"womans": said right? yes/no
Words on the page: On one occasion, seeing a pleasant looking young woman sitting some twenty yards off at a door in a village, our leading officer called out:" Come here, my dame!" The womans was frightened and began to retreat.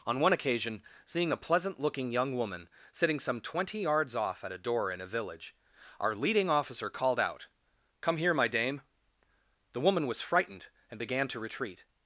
no